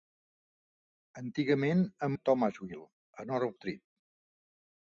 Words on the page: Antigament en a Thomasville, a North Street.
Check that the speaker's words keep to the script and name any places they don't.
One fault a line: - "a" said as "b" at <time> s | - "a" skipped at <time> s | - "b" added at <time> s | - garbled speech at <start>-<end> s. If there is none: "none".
none